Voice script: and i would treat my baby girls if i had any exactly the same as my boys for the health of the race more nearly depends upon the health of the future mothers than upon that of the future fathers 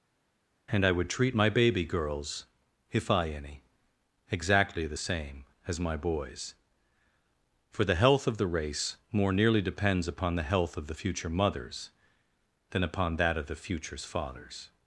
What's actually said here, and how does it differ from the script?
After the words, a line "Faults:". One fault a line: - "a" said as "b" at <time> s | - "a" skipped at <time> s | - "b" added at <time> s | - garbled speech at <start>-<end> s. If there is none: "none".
and i would treat my baby girls if i any exactly the same as my boys for the health of the race more nearly depends upon the health of the future mothers than upon that of the futures fathers
Faults:
- "had" skipped at 3.3 s
- "future" said as "futures" at 13.5 s